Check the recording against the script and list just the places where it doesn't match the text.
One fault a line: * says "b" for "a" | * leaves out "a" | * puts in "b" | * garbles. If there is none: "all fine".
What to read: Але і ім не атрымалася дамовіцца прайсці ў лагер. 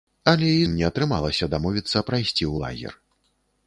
all fine